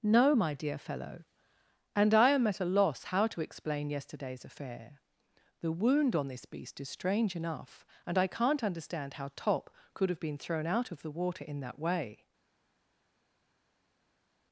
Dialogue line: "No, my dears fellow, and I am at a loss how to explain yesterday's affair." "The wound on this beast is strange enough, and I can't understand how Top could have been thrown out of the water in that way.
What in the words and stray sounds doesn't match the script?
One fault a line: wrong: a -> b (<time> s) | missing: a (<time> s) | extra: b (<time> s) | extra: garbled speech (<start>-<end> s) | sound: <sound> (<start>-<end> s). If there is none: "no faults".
wrong: dears -> dear (0.5 s)